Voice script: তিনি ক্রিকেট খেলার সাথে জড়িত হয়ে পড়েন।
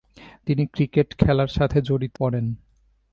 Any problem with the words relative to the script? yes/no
yes